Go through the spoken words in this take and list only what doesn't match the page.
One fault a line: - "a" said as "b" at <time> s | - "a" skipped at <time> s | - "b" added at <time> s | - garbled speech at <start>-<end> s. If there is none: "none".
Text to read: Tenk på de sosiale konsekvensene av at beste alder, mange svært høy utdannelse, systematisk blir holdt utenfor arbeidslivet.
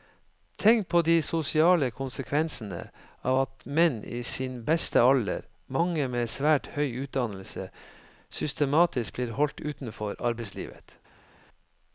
- "menn i sin" added at 3.6 s
- "med" added at 6.1 s